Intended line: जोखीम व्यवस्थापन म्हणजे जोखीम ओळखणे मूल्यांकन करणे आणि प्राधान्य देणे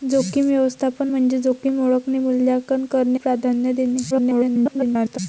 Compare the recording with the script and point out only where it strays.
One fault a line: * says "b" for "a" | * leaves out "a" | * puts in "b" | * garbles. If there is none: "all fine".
* leaves out "आणि"
* garbles